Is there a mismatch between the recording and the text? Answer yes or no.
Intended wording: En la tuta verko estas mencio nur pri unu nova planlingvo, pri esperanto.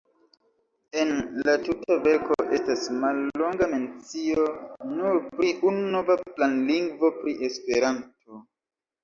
yes